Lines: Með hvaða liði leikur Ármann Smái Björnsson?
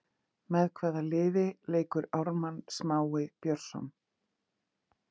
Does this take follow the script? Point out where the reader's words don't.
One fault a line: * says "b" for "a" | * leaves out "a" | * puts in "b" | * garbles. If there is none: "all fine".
all fine